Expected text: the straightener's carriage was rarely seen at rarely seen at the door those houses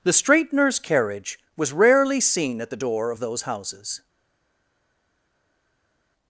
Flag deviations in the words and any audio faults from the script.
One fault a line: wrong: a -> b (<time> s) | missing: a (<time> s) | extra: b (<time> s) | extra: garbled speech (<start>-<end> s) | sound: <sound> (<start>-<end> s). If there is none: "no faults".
missing: rarely seen at (2.7 s)
extra: of (3.1 s)